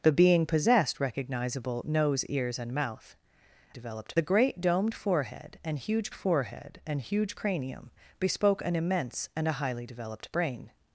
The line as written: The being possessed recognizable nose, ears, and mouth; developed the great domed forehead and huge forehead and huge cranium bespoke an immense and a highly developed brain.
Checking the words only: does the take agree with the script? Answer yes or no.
yes